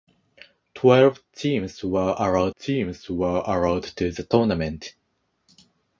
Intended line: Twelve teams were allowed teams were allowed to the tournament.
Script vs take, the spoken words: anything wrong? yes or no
no